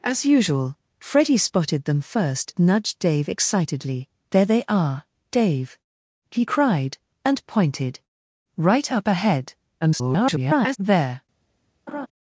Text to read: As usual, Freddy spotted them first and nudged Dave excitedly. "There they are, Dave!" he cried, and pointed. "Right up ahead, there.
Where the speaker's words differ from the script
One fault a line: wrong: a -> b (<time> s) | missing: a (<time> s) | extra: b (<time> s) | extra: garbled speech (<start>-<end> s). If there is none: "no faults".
missing: and (2.5 s)
extra: garbled speech (9.8-10.8 s)